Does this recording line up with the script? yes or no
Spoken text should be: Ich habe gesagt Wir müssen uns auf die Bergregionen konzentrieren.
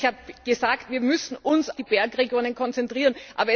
no